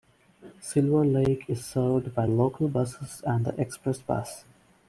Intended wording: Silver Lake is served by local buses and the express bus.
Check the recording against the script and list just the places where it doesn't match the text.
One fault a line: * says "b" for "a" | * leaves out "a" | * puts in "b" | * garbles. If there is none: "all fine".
all fine